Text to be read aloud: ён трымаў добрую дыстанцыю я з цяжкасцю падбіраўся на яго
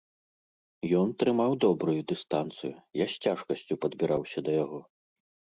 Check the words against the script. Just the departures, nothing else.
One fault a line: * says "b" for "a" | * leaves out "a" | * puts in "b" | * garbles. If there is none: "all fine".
* says "да" for "на"